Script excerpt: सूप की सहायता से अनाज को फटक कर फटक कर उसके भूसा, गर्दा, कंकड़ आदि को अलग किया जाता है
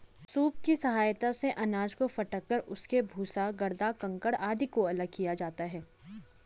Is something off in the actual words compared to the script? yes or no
yes